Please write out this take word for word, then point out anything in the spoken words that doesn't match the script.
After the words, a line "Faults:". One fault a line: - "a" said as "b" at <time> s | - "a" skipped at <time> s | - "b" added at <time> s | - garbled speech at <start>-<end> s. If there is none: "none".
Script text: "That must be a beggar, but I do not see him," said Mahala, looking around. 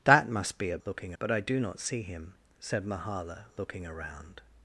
"That must be a looking, but I do not see him," said Mahala, looking around.
Faults:
- "beggar" said as "looking" at 0.9 s